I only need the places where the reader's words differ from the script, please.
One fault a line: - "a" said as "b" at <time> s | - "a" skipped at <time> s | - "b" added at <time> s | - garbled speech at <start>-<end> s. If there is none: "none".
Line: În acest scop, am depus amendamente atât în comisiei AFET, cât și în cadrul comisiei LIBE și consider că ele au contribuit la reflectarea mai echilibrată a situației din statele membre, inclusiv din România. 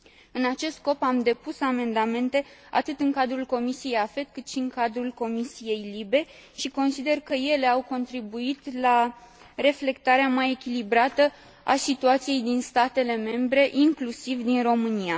- "cadrul" added at 3.1 s